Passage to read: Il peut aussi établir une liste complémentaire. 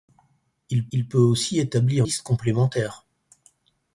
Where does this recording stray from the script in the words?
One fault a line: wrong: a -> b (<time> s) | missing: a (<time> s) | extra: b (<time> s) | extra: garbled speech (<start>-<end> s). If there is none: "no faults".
extra: il (0.9 s)
missing: une (2.1 s)